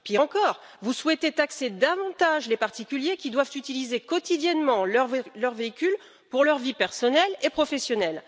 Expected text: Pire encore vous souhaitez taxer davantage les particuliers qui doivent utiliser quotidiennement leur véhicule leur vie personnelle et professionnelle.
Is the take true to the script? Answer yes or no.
no